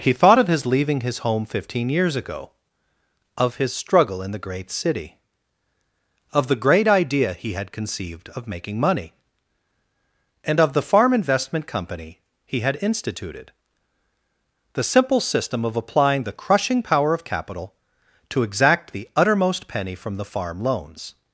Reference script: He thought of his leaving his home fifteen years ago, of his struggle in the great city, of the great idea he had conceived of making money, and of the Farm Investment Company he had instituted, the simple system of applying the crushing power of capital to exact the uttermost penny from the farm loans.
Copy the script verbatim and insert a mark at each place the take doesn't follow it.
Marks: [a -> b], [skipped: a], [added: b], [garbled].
He thought of his leaving his home fifteen years ago, of his struggle in the great city, of the great idea he had conceived of making money, and of the Farm Investment Company he had instituted, the simple system of applying the crushing power of capital to exact the uttermost penny from the farm loans.